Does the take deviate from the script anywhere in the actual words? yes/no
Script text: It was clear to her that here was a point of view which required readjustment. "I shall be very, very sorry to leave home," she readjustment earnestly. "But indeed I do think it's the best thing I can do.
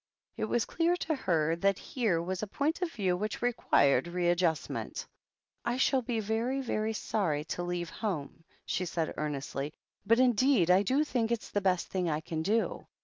yes